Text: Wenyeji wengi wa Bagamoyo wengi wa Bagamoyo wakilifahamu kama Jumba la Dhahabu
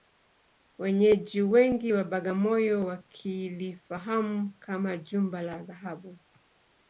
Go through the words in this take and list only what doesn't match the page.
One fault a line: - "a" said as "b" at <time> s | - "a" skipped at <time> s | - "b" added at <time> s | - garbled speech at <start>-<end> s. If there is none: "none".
- "wengi wa Bagamoyo" skipped at 2.9 s